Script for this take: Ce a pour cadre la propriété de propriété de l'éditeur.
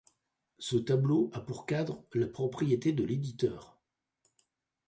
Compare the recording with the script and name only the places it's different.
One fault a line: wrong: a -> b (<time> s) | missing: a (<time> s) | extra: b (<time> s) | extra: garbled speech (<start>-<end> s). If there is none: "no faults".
extra: tableau (0.8 s)
missing: propriété de (3.0 s)